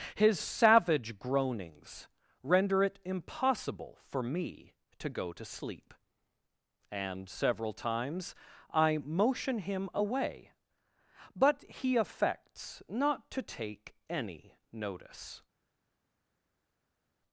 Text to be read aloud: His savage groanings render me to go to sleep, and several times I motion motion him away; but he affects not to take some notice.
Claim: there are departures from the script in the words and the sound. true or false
true